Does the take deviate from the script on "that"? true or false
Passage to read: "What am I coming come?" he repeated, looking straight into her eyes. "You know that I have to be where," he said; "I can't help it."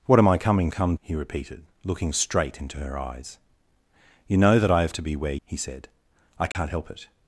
false